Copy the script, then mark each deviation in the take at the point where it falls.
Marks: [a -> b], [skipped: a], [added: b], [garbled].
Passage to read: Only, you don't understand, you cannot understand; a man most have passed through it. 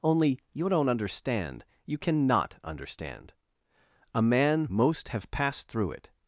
Only, you don't understand, you cannot understand; a man most have passed through it.